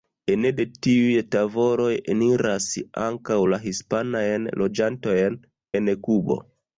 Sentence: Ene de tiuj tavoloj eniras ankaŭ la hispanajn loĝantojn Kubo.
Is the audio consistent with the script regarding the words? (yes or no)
no